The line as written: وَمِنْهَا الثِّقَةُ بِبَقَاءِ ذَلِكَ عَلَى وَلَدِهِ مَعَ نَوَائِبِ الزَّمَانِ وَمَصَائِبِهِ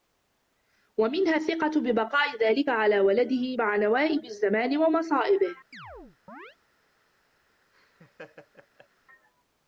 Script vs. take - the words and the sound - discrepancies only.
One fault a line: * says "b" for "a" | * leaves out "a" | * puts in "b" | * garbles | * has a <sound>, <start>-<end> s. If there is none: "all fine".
* has a chirp, 5.7-6.6 s
* has a laugh, 7.7-8.9 s